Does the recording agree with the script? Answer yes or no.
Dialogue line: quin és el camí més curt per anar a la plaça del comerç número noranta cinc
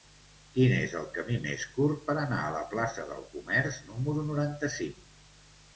yes